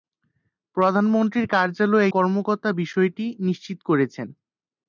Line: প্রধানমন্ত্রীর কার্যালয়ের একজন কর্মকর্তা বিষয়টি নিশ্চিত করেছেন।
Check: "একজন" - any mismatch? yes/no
yes